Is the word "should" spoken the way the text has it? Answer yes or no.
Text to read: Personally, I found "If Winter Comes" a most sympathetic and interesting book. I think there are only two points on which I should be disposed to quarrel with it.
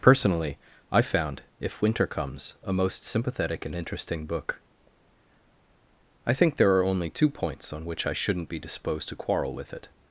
no